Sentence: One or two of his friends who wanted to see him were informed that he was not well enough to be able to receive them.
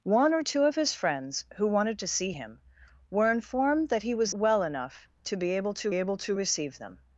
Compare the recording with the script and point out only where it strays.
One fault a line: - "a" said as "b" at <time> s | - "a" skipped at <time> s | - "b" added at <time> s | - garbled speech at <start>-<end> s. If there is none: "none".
- "not" skipped at 4.3 s
- "able to" added at 5.9 s